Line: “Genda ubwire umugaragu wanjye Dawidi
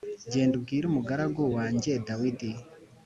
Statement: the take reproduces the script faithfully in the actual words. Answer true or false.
true